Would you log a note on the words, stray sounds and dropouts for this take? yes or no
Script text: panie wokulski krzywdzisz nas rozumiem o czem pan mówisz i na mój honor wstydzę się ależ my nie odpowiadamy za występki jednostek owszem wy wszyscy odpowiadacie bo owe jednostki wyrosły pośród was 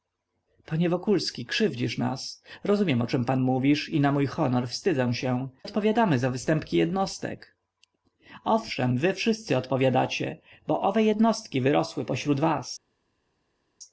yes